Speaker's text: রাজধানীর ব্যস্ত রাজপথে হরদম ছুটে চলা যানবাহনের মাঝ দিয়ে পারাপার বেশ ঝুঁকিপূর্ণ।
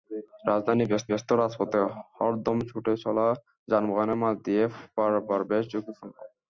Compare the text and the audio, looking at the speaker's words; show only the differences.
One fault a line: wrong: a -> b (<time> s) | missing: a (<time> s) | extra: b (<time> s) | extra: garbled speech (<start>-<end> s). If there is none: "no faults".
extra: ব্যস্ত (1.1 s)